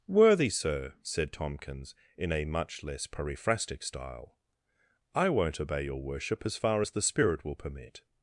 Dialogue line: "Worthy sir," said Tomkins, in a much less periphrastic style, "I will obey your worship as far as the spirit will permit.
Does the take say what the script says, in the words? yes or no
no